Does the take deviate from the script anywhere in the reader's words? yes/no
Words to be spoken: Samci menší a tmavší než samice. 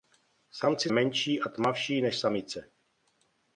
no